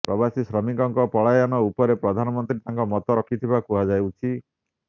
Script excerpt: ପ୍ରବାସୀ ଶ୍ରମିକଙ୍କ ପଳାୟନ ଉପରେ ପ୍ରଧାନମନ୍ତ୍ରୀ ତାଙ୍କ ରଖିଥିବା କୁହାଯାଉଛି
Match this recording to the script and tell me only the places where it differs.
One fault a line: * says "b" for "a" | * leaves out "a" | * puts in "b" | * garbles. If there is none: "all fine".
* puts in "ମତ"